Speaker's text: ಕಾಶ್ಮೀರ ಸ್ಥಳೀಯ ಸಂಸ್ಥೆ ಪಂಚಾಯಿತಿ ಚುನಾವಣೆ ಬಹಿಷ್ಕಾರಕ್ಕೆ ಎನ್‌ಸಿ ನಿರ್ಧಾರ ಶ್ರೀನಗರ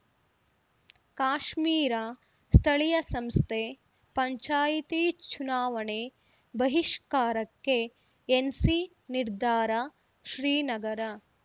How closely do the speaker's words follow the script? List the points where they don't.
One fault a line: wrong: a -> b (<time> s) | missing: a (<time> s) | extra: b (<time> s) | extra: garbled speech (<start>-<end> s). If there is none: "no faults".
no faults